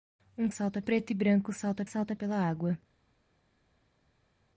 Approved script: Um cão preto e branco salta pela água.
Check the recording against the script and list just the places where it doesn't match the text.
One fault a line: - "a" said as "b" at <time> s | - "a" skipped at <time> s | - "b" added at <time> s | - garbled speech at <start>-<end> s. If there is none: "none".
- "cão" said as "salta" at 0.5 s
- "salta" added at 1.8 s